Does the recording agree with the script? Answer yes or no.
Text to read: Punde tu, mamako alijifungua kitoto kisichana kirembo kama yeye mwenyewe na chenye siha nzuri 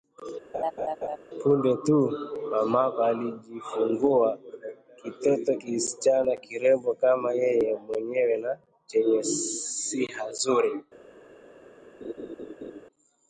yes